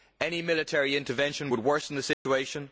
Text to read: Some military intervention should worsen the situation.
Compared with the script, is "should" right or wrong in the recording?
wrong